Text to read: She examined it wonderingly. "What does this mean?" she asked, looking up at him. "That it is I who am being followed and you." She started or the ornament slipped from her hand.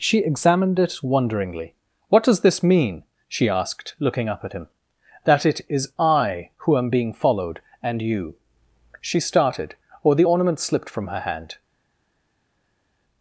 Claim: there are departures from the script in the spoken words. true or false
false